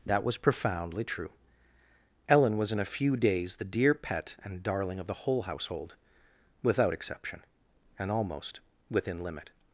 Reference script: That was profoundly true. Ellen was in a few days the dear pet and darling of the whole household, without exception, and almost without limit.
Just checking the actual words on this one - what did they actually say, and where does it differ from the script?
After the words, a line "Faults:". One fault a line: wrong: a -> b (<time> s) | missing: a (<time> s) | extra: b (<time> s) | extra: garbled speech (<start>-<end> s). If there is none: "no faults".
That was profoundly true. Ellen was in a few days the dear pet and darling of the whole household, without exception, and almost within limit.
Faults:
wrong: without -> within (8.9 s)